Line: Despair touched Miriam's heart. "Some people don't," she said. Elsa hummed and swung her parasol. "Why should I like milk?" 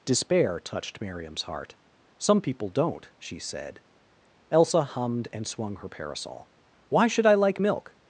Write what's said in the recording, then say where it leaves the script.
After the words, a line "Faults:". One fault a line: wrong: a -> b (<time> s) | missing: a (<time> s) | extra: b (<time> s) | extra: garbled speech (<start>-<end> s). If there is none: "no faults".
Despair touched Miriam's heart. "Some people don't," she said. Elsa hummed and swung her parasol. "Why should I like milk?"
Faults:
no faults